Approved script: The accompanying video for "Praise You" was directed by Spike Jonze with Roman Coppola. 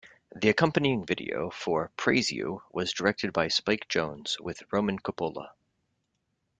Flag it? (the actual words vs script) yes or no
no